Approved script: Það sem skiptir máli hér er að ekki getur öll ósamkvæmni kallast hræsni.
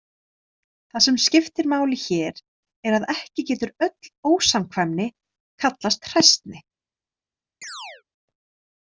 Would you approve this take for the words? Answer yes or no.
yes